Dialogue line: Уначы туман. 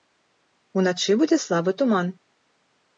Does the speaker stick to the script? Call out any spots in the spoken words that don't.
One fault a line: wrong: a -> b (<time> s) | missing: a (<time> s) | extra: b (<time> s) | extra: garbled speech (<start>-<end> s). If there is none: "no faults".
extra: будзе слабы (1.2 s)